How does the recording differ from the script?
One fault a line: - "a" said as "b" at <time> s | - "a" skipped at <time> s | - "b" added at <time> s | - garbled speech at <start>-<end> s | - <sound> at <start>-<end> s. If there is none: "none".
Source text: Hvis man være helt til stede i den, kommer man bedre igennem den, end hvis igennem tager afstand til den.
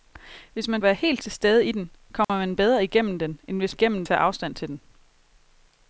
- dropout at 2.2-2.3 s